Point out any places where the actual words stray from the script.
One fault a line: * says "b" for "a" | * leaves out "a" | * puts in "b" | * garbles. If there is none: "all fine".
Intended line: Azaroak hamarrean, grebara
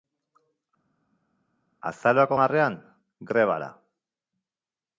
all fine